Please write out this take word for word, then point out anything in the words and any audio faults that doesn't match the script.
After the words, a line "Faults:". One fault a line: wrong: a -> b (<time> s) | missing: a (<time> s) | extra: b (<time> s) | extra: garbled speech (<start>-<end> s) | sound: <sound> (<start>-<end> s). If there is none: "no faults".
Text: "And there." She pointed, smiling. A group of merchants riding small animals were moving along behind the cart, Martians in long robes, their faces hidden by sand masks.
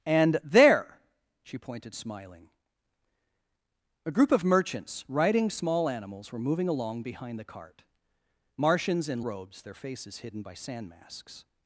"And there." She pointed, smiling. A group of merchants riding small animals were moving along behind the cart, Martians in robes, their faces hidden by sand masks.
Faults:
missing: long (9.2 s)